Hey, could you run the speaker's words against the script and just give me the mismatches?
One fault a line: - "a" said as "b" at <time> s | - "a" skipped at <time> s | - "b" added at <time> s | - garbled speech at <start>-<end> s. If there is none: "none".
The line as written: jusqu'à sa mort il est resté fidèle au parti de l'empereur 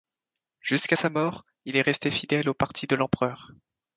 none